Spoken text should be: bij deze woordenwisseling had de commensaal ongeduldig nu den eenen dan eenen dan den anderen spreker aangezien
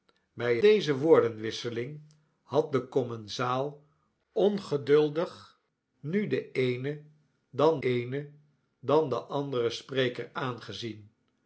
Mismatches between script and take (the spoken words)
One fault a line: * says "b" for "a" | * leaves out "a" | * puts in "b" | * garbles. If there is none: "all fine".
all fine